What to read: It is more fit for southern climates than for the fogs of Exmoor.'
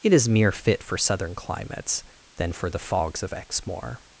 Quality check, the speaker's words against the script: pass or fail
fail